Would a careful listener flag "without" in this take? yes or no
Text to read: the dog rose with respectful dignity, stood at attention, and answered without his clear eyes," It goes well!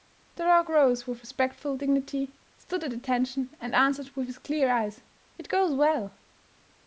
yes